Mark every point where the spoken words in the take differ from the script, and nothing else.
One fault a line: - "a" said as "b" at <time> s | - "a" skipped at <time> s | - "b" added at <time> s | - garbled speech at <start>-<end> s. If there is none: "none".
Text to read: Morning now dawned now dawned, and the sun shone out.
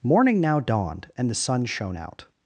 - "now dawned" skipped at 1.1 s